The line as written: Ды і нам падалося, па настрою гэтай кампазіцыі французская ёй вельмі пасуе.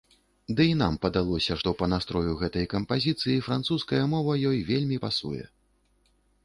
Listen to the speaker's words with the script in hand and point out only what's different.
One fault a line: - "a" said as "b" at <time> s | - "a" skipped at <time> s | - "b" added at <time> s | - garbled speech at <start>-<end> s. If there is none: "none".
- "што" added at 1.6 s
- "мова" added at 4.2 s